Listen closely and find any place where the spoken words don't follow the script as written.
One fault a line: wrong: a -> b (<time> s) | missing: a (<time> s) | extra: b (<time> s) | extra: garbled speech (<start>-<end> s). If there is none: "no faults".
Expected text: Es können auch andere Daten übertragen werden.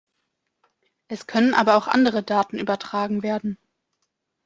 extra: aber (1.5 s)